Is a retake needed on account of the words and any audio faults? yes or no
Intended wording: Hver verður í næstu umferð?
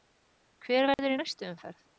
yes